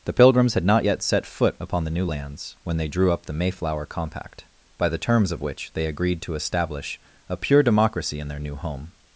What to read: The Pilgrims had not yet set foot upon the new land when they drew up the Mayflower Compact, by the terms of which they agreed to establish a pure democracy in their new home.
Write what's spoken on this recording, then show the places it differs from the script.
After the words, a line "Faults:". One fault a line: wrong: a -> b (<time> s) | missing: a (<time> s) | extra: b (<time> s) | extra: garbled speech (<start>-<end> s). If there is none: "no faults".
The Pilgrims had not yet set foot upon the new lands when they drew up the Mayflower Compact, by the terms of which they agreed to establish a pure democracy in their new home.
Faults:
wrong: land -> lands (2.0 s)